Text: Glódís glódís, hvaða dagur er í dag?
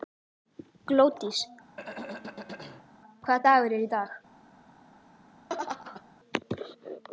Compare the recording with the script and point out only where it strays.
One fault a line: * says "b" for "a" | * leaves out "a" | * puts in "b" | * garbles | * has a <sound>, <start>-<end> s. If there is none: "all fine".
* leaves out "glódís"
* has a throat clearing, 1.8-2.9 s
* has a laugh, 5.5-6.0 s